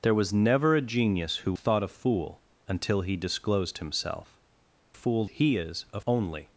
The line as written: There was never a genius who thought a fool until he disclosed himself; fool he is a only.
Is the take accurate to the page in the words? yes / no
yes